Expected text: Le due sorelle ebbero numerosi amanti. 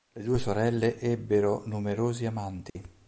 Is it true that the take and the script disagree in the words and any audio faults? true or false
true